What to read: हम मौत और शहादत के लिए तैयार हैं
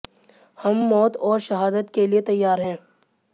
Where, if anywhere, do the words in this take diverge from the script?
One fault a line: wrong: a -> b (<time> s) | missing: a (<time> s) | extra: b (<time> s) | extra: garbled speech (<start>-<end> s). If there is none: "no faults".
no faults